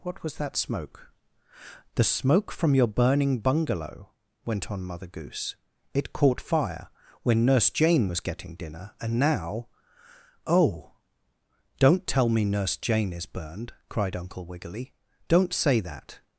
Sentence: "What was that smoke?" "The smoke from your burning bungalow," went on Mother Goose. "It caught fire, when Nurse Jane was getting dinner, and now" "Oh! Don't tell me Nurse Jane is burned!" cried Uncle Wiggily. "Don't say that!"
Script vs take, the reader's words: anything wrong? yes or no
no